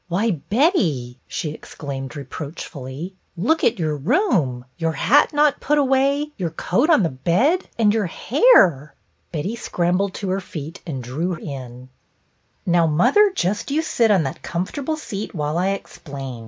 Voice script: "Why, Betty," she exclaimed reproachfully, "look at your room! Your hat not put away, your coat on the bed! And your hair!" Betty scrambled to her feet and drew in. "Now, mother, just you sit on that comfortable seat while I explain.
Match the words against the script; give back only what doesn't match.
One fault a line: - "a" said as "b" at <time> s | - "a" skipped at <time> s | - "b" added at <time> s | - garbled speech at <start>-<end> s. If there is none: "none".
none